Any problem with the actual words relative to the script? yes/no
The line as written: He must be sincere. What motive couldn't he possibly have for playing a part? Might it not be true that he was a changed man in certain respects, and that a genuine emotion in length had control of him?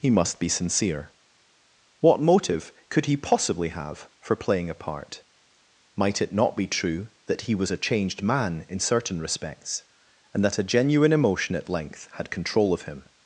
yes